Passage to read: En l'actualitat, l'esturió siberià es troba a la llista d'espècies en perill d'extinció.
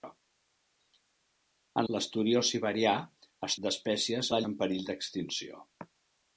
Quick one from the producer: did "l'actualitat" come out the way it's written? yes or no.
no